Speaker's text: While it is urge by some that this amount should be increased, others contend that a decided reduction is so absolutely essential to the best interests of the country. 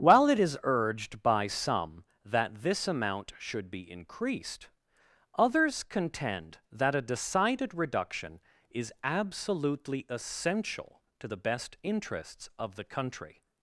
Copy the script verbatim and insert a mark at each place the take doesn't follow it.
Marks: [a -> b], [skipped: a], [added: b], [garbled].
While it is [urge -> urged] by some that this amount should be increased, others contend that a decided reduction is [skipped: so] absolutely essential to the best interests of the country.